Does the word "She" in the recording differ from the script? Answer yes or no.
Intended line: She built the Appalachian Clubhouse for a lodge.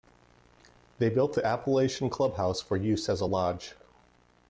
yes